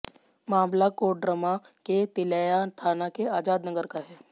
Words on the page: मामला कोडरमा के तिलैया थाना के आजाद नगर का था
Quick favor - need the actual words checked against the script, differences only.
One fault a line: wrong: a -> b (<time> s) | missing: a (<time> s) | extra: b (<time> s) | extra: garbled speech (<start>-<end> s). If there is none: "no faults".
wrong: था -> है (4.1 s)